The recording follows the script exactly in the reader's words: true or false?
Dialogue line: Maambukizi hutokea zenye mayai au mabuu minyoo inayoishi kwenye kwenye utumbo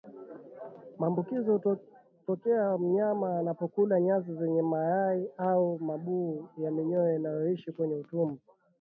false